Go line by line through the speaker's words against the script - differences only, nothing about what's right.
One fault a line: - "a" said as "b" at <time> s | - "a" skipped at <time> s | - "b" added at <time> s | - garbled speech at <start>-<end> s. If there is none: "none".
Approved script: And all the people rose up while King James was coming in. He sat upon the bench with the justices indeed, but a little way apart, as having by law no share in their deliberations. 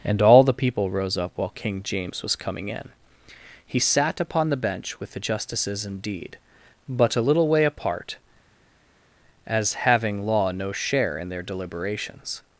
- "by" skipped at 10.3 s